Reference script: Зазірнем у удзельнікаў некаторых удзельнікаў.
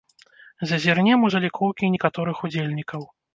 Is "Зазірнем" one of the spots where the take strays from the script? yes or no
no